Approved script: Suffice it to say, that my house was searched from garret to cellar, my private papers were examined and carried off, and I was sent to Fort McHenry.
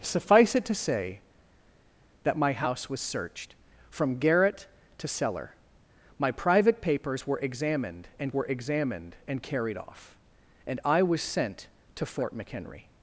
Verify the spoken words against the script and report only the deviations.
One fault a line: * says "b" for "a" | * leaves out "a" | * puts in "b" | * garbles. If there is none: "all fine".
* puts in "were examined and"